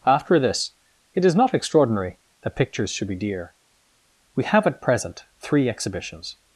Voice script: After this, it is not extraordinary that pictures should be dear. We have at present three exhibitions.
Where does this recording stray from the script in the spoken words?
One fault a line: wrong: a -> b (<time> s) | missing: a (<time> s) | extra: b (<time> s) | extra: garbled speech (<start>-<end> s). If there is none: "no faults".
no faults